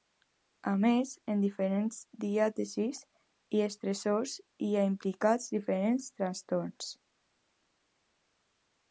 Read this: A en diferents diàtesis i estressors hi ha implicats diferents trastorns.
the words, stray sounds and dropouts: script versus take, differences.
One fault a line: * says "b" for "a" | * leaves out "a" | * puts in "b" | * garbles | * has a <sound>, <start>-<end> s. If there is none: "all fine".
* puts in "més"